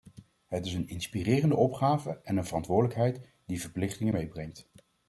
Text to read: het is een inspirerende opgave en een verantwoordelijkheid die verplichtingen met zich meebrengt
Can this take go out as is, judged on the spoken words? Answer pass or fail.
fail